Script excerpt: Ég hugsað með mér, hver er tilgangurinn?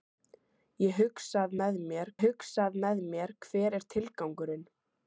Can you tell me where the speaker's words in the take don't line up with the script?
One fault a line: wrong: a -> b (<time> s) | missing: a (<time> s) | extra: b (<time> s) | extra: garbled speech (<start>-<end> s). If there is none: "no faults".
extra: hugsað með mér (2.2 s)